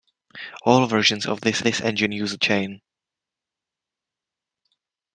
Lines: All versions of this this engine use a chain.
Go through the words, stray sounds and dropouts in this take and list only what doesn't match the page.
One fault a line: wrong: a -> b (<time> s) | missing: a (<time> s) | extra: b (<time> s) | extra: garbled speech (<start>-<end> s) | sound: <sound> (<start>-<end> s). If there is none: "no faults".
no faults